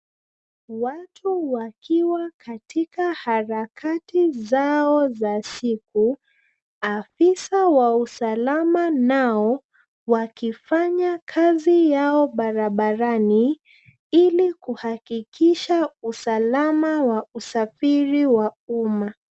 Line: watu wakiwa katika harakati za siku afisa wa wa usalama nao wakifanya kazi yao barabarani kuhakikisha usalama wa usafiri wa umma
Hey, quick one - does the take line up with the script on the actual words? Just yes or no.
no